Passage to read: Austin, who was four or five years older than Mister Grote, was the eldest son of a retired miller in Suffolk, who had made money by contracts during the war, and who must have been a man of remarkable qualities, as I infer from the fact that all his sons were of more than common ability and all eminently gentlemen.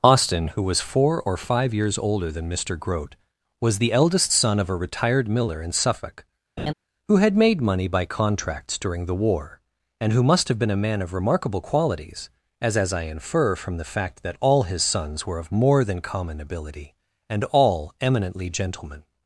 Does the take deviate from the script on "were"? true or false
false